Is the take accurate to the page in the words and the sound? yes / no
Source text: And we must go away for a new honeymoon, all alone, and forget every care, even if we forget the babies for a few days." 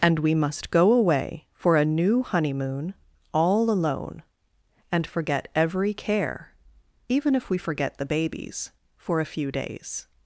yes